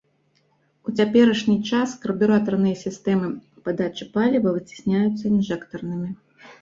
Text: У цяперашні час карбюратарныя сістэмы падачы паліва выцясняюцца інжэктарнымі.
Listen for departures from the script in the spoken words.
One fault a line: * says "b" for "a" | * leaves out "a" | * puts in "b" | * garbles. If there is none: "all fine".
all fine